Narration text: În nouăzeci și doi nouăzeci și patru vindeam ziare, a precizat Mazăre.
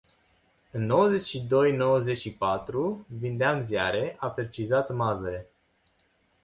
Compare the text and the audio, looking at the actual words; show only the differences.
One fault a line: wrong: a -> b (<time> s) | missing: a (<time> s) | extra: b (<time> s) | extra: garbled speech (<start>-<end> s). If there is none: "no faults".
no faults